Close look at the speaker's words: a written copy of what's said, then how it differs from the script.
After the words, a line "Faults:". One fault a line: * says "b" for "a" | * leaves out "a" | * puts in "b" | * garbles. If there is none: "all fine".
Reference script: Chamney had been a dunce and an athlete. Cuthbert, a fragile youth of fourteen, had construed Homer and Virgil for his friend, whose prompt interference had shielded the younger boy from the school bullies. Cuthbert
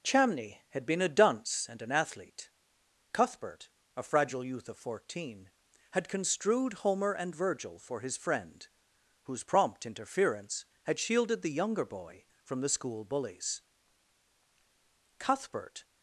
Chamney had been a dunce and an athlete. Cuthbert, a fragile youth of fourteen, had construed Homer and Virgil for his friend, whose prompt interference had shielded the younger boy from the school bullies. Cuthbert
Faults:
all fine